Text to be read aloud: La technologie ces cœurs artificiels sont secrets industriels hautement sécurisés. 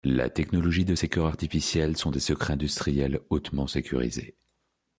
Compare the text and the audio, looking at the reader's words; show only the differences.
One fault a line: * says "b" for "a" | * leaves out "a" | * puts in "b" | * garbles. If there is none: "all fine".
* puts in "de"
* puts in "des"